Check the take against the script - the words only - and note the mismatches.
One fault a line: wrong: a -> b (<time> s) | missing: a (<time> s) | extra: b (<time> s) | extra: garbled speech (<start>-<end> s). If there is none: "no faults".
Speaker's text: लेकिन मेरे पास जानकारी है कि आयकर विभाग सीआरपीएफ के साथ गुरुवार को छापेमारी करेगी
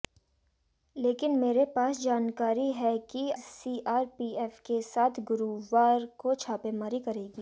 missing: आयकर विभाग (3.3 s)